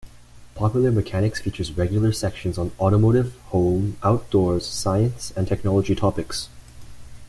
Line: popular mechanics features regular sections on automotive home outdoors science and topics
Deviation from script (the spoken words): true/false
true